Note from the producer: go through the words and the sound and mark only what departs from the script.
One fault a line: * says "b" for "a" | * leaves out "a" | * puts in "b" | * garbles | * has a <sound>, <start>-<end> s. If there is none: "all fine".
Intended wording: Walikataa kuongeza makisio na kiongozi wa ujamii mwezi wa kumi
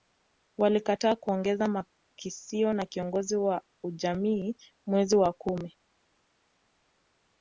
all fine